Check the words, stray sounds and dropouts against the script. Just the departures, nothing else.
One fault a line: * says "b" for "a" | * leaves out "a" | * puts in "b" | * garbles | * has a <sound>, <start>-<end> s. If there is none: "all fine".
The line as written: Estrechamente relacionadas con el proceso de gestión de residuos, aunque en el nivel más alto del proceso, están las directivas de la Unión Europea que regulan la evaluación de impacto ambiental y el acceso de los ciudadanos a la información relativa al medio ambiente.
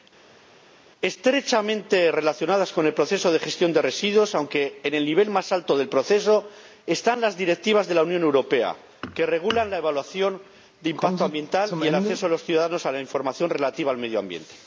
all fine